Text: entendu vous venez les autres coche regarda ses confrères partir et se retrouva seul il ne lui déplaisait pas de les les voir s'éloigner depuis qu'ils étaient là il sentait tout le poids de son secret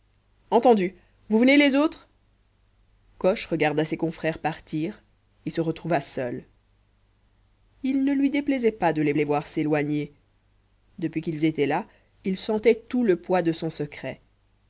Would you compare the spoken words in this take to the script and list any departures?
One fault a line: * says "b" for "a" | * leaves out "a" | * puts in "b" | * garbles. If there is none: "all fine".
all fine